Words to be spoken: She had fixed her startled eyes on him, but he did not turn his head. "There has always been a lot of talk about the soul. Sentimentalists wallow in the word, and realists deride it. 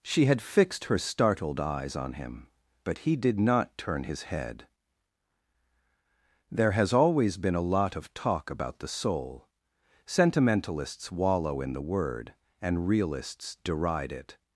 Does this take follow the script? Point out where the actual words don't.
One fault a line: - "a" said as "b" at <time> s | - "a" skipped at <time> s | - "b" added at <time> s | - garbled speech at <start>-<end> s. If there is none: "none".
none